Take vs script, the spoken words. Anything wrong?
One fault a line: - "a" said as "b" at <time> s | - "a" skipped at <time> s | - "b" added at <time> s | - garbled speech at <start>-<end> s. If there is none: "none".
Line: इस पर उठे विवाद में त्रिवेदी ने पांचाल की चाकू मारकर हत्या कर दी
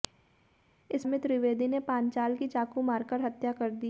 - "पर उठे विवाद" skipped at 1.0 s